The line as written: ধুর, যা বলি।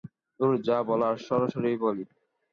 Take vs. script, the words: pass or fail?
fail